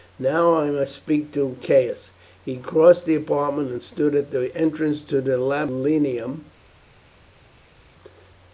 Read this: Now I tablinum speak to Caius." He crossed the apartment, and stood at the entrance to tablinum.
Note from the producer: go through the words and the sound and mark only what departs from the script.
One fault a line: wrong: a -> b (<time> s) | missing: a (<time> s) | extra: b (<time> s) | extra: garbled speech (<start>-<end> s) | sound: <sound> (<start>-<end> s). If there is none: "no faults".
wrong: tablinum -> must (0.7 s)
extra: the (5.2 s)